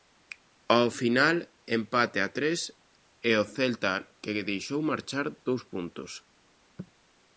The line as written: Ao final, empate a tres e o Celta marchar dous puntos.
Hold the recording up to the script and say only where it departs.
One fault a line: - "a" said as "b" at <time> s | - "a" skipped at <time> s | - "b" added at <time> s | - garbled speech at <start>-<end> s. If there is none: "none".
- "que deixou" added at 4.2 s